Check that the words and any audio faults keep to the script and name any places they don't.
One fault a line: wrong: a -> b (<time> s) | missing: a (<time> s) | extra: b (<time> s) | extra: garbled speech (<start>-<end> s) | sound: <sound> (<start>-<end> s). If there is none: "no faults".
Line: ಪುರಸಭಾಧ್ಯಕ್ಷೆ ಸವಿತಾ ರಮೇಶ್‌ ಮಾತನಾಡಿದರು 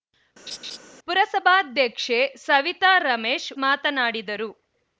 sound: laugh (0.5-0.8 s)